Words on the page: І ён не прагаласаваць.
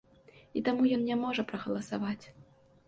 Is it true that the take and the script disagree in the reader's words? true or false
true